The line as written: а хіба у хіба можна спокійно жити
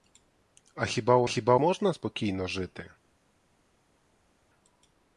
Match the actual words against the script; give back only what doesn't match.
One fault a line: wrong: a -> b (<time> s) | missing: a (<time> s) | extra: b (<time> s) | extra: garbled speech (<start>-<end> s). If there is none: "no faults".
no faults